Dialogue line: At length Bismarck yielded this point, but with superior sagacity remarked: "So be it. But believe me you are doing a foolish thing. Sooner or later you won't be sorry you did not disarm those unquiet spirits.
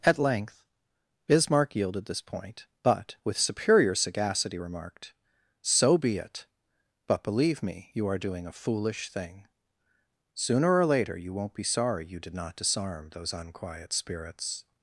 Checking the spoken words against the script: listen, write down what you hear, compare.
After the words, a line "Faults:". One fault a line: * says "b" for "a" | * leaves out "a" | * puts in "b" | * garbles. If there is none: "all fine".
At length Bismarck yielded this point, but with superior sagacity remarked: "So be it. But believe me you are doing a foolish thing. Sooner or later you won't be sorry you did not disarm those unquiet spirits.
Faults:
all fine